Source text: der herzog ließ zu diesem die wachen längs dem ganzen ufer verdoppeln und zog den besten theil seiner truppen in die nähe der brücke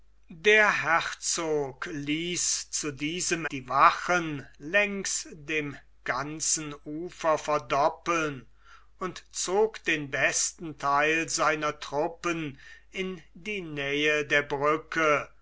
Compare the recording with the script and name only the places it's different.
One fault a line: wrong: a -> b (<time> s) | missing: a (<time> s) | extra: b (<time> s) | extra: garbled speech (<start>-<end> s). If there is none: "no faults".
no faults